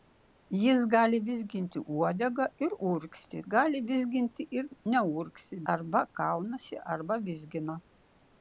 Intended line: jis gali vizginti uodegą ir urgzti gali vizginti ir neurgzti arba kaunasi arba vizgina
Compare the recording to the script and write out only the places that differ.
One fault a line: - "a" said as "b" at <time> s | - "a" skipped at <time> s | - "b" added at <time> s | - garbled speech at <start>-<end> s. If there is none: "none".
none